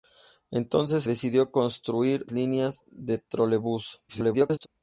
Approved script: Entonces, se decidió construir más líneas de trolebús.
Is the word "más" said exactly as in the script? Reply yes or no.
no